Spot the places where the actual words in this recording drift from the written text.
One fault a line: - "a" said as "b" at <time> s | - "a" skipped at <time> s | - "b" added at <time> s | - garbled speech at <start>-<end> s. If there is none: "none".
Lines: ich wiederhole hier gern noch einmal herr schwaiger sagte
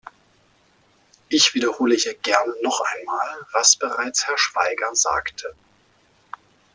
- "was bereits" added at 3.5 s